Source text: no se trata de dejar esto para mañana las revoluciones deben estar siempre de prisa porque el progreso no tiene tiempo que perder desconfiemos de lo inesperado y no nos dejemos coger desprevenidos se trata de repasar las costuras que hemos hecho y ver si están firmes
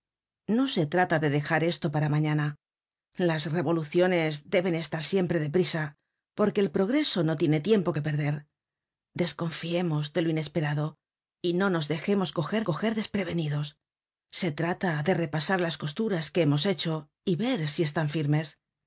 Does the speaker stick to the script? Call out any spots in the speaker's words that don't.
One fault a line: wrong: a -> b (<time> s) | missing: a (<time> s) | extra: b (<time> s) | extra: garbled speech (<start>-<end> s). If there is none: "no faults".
extra: coger (12.6 s)